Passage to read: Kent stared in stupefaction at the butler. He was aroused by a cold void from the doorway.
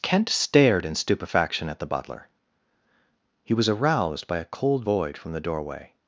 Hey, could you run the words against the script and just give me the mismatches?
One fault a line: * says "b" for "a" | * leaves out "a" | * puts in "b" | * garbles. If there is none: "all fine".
all fine